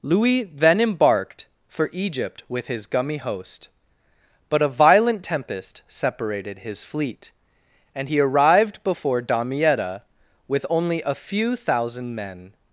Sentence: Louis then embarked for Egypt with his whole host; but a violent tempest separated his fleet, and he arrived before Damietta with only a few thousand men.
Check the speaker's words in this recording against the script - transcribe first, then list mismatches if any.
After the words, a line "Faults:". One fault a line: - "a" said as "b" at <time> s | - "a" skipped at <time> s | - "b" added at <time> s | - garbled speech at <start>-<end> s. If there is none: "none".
Louis then embarked for Egypt with his gummy host; but a violent tempest separated his fleet, and he arrived before Damietta with only a few thousand men.
Faults:
- "whole" said as "gummy" at 2.9 s